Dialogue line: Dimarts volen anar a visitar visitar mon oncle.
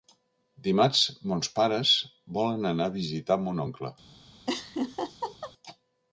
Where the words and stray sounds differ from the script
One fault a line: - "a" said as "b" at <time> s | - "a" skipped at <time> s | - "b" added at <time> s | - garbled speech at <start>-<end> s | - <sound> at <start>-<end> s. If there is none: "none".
- "mons pares" added at 1.3 s
- "visitar" skipped at 3.4 s
- laugh at 4.5-5.5 s